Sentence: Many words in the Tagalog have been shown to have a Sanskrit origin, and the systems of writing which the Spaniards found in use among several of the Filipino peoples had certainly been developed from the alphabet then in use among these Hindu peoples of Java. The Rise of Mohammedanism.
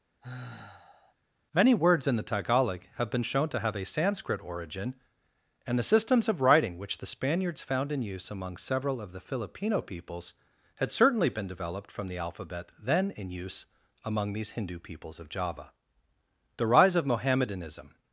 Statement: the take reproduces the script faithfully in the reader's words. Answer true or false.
true